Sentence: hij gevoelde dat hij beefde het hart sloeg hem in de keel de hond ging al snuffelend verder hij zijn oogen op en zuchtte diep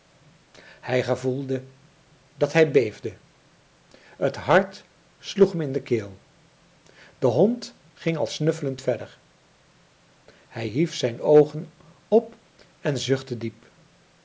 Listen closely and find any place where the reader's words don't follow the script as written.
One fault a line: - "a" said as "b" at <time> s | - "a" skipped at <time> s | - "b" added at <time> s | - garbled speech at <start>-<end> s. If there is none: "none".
- "hief" added at 10.7 s